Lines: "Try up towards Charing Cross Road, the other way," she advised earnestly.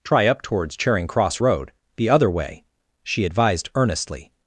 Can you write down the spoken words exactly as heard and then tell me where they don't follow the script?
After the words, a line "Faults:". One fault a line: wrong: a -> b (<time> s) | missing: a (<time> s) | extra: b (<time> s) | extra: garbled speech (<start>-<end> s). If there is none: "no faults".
"Try up towards Charing Cross Road, the other way," she advised earnestly.
Faults:
no faults